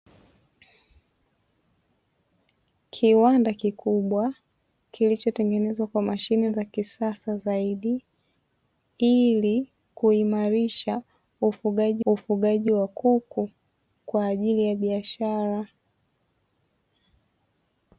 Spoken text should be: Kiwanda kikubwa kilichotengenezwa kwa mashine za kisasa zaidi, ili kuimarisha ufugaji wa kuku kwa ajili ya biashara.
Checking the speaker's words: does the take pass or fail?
fail